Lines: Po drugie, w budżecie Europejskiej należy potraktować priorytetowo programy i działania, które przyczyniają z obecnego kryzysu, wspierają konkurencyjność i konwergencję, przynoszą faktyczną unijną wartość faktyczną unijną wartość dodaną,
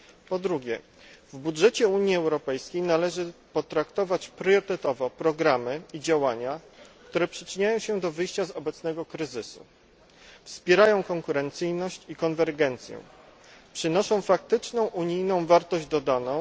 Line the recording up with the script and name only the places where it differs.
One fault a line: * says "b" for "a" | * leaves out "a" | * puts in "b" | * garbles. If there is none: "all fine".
* puts in "Unii"
* puts in "się do wyjścia"
* leaves out "faktyczną unijną wartość"